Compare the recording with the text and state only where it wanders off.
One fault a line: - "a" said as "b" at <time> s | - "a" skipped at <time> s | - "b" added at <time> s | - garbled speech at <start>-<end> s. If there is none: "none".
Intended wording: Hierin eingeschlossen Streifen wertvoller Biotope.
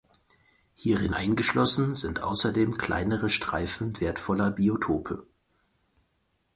- "sind außerdem kleinere" added at 2.0 s